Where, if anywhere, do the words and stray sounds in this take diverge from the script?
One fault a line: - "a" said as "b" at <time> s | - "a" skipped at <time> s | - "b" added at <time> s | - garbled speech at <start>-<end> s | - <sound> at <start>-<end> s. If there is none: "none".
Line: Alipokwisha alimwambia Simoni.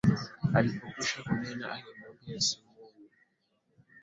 - "kunena" added at 1.2 s